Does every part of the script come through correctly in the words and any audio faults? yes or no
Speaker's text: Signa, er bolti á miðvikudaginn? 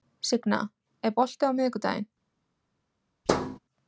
no